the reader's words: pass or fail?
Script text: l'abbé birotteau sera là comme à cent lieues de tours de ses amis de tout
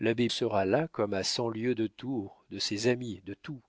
fail